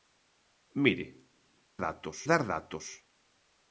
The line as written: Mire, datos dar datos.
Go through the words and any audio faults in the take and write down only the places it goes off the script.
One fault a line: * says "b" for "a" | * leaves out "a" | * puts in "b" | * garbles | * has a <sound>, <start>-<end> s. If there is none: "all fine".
all fine